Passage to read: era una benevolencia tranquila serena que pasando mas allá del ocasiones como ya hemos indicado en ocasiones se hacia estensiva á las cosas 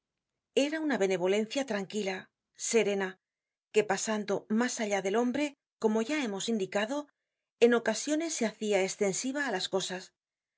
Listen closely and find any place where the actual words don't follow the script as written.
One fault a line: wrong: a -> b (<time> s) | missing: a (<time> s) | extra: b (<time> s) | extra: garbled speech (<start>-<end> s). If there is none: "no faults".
wrong: ocasiones -> hombre (5.2 s)